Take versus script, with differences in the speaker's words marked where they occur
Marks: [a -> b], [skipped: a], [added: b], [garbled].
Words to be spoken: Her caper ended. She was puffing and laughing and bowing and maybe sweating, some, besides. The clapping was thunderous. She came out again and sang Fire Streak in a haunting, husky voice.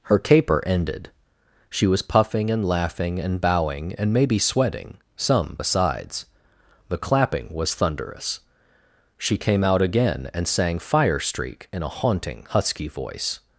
Her caper ended. She was puffing and laughing and bowing and maybe sweating, some, besides. The clapping was thunderous. She came out again and sang Fire Streak in a haunting, husky voice.